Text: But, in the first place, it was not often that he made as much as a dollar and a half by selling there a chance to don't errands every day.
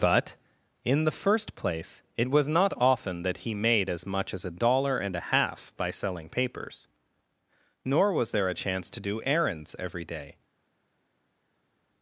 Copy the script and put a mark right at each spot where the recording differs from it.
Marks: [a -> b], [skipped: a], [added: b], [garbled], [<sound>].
But, in the first place, it was not often that he made as much as a dollar and a half by selling [added: papers nor was] there a chance to [don't -> do] errands every day.